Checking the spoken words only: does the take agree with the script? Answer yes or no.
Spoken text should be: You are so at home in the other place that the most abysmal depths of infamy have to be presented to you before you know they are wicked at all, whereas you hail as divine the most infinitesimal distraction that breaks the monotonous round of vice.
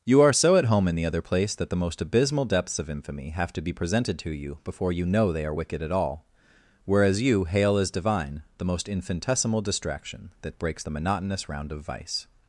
yes